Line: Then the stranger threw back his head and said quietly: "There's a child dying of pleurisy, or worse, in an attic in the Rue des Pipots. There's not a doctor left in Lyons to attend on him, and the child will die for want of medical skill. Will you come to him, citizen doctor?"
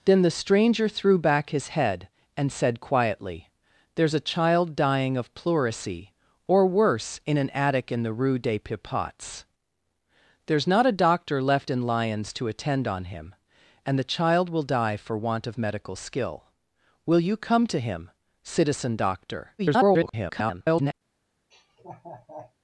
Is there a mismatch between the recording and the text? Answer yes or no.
yes